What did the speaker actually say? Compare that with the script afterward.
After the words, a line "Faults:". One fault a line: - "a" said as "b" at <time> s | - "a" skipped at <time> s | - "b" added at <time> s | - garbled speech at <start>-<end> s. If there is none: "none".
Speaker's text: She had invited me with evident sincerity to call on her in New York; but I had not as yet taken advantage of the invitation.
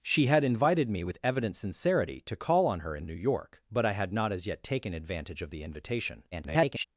She had invited me with evident sincerity to call on her in New York; but I had not as yet taken advantage of the invitation. [garbled]
Faults:
- garbled speech at 6.3-6.8 s